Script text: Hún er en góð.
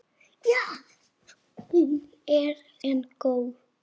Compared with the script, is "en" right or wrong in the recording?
right